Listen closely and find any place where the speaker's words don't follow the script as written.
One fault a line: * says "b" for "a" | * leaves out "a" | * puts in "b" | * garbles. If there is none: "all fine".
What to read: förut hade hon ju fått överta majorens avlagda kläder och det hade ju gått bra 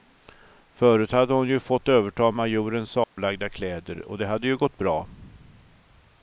all fine